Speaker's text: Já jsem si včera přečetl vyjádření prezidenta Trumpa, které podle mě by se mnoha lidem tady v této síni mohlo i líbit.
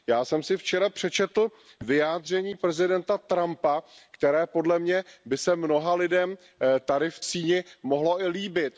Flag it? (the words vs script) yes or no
yes